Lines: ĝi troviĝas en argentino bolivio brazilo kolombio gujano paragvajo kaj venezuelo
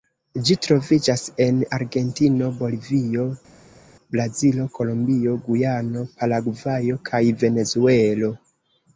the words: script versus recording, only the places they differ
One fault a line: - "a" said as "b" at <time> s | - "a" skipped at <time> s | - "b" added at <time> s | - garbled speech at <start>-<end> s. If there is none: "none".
none